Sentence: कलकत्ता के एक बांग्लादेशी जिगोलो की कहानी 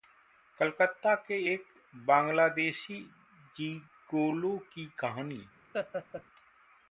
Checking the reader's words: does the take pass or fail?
pass